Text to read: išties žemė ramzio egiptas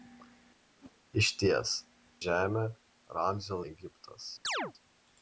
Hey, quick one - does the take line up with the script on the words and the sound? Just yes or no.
no